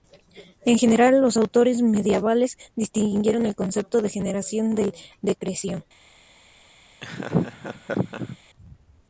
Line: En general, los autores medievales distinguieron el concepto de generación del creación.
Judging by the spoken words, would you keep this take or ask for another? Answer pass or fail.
fail